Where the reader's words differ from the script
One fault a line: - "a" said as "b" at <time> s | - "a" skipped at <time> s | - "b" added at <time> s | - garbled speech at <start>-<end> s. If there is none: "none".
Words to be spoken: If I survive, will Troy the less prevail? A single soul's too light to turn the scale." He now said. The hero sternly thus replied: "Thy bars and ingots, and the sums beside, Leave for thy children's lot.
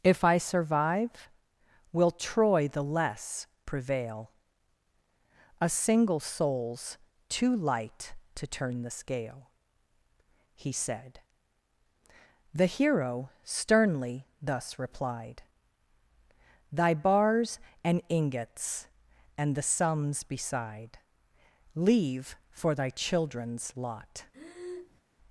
- "now" skipped at 10.7 s